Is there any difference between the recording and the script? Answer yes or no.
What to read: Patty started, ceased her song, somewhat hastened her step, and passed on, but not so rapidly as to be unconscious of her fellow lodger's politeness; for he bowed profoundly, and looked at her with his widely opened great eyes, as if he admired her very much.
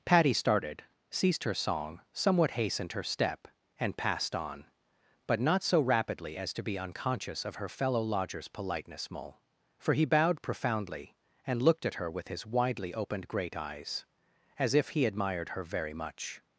yes